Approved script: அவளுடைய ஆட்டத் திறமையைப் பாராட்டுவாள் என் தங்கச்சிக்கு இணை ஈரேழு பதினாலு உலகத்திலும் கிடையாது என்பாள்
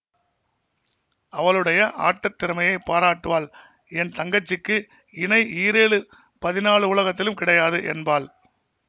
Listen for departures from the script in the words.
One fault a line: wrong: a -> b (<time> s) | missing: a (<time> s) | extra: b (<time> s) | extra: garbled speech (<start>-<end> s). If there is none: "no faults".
no faults